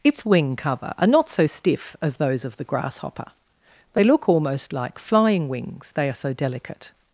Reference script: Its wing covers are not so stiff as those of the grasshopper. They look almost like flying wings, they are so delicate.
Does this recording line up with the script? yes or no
no